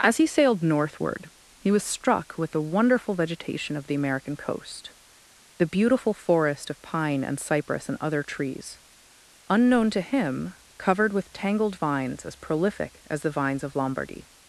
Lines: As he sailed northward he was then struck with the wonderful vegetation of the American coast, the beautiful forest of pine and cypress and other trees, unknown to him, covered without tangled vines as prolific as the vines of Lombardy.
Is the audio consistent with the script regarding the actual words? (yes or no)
no